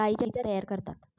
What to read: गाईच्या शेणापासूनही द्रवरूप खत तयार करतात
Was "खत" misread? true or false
true